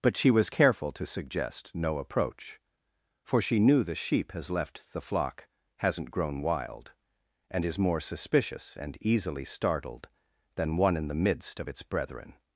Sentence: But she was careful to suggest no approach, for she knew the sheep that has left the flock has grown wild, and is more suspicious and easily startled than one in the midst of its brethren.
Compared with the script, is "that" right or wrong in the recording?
wrong